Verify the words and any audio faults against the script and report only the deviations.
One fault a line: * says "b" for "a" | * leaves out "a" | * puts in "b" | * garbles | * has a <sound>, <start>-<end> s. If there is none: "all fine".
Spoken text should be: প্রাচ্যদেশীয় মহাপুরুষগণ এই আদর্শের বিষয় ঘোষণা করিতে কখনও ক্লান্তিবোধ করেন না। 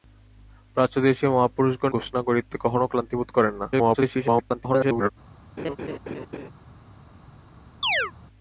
* leaves out "এই আদর্শের বিষয়"
* garbles
* has a laugh, 5.6-6.5 s
* has a chirp, 7.8-8.1 s